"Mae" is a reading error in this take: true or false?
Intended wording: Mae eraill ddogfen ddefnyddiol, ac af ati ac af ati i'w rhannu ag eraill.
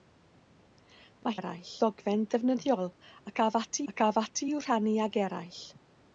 false